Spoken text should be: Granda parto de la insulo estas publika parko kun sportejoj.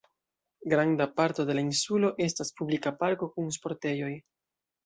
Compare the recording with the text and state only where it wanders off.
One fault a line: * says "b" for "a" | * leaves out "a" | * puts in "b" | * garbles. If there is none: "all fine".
all fine